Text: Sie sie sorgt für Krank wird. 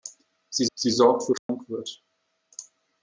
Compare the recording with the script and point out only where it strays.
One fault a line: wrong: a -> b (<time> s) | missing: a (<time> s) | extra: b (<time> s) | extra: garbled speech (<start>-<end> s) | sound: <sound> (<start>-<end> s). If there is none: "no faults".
sound: dropout (1.4-1.5 s)